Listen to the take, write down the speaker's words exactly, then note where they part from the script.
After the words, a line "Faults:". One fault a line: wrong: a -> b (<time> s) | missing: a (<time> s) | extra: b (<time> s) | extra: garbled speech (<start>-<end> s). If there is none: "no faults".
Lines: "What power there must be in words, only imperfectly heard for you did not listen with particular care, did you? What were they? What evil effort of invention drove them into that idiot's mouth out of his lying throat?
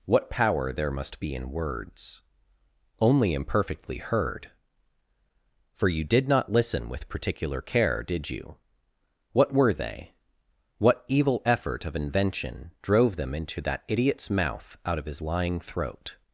"What power there must be in words, only imperfectly heard for you did not listen with particular care, did you? What were they? What evil effort of invention drove them into that idiot's mouth out of his lying throat?
Faults:
no faults